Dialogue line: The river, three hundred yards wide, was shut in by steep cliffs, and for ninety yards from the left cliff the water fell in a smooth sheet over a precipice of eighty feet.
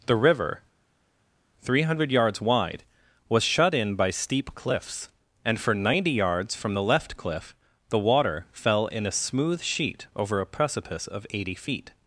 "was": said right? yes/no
yes